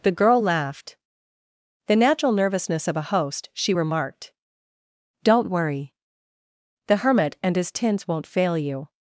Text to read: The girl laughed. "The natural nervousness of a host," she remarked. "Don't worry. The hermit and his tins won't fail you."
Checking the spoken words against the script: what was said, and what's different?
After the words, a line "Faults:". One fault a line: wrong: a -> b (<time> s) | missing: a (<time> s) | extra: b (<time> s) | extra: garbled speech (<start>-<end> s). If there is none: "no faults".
The girl laughed. "The natural nervousness of a host," she remarked. "Don't worry. The hermit and his tins won't fail you."
Faults:
no faults